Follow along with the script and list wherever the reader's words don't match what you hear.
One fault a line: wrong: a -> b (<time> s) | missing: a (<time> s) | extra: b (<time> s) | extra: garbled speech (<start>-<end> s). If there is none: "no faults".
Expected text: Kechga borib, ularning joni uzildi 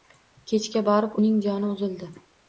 wrong: ularning -> uning (1.2 s)